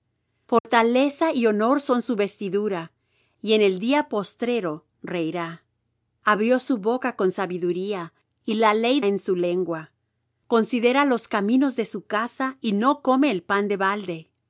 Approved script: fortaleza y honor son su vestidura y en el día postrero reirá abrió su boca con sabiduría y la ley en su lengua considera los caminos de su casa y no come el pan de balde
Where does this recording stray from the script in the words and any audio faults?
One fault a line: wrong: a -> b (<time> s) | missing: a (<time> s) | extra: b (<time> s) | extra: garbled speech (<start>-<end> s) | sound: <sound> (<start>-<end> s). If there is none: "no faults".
sound: dropout (0.6-0.7 s)